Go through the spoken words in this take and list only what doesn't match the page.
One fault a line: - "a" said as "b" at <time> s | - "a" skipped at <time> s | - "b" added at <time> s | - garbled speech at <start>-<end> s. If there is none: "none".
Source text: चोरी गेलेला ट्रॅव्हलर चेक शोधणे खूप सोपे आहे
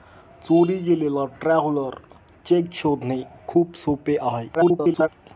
- garbled speech at 4.5-5.1 s